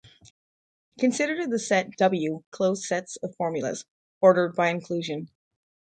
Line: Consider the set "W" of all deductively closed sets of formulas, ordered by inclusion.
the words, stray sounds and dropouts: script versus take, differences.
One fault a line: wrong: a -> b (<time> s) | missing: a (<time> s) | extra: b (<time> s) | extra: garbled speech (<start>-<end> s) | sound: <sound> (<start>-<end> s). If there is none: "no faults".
missing: of all deductively (2.4 s)